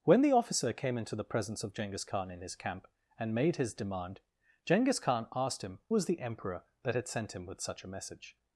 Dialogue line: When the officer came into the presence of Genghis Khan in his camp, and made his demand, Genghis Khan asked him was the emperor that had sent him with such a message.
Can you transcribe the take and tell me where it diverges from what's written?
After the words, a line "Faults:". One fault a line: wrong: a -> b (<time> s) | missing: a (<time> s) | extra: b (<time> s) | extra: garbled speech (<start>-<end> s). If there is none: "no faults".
When the officer came into the presence of Genghis Khan in his camp, and made his demand, Genghis Khan asked him was the emperor that had sent him with such a message.
Faults:
no faults